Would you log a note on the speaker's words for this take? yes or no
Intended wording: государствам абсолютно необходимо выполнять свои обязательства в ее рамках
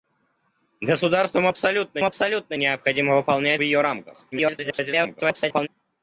yes